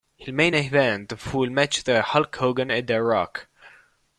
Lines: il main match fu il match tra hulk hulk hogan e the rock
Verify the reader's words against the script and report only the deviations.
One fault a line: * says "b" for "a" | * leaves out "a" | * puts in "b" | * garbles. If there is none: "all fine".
* says "event" for "match"
* leaves out "hulk"